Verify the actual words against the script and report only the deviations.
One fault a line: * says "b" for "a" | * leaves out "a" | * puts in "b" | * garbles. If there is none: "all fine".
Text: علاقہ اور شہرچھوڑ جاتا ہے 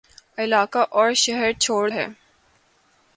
* leaves out "جاتا"